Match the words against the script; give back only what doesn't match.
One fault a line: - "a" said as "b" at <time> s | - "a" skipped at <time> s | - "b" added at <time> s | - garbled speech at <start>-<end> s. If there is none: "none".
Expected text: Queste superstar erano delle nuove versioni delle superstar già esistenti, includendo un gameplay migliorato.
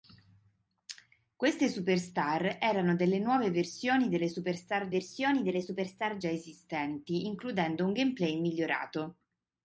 - "versioni delle superstar" added at 4.9 s